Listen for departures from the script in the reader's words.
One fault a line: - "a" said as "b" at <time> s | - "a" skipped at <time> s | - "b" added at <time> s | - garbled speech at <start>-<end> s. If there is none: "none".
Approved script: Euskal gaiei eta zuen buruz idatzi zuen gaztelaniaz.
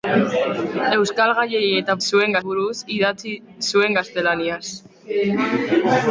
none